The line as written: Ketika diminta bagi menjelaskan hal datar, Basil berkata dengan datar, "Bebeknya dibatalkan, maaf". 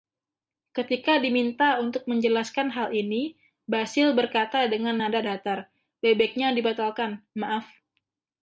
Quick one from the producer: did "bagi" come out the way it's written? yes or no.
no